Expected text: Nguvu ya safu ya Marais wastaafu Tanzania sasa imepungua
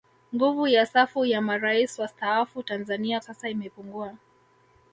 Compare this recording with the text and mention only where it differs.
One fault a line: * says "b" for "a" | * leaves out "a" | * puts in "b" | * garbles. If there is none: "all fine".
all fine